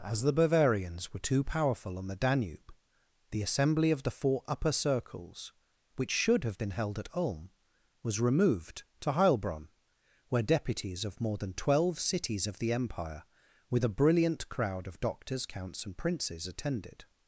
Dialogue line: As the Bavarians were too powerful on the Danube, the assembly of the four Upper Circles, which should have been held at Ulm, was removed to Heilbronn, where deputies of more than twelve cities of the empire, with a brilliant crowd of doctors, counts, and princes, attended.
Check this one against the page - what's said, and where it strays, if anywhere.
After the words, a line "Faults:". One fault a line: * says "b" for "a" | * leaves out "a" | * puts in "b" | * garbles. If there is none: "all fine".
As the Bavarians were too powerful on the Danube, the assembly of the four Upper Circles, which should have been held at Ulm, was removed to Heilbronn, where deputies of more than twelve cities of the empire, with a brilliant crowd of doctors, counts, and princes, attended.
Faults:
all fine